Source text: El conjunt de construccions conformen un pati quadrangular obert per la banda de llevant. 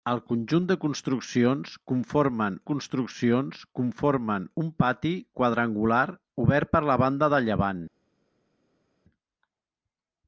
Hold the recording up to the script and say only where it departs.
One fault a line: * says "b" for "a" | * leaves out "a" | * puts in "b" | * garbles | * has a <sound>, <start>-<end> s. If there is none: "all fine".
* puts in "construccions conformen"